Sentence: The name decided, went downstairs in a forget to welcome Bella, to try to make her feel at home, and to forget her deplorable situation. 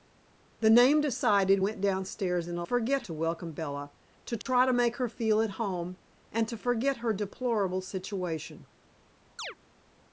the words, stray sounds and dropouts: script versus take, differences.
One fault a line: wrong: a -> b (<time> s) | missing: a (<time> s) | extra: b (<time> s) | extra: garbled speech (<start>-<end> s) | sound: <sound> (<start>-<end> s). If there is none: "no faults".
sound: dropout (4.4-4.5 s)
sound: chirp (9.4-9.6 s)